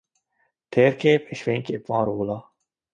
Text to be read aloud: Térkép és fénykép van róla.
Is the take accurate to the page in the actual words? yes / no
yes